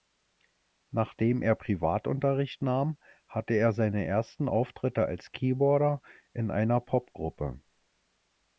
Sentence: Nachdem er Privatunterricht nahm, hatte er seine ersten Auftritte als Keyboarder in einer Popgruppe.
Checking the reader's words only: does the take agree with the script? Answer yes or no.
yes